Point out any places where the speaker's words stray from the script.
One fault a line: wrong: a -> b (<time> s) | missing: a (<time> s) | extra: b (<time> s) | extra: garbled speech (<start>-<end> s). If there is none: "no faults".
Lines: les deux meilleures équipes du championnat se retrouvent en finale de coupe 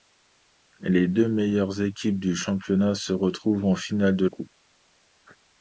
no faults